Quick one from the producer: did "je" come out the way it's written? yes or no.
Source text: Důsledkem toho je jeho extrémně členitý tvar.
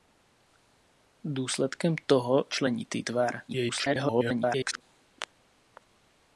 no